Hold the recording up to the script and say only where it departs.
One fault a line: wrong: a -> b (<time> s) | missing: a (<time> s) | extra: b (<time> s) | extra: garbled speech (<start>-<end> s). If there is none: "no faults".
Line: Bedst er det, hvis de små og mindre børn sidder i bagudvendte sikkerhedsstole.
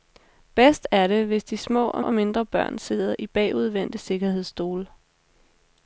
extra: og (2.0 s)